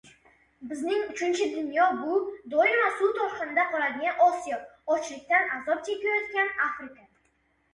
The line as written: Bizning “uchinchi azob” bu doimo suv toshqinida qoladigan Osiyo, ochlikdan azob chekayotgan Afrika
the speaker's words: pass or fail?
fail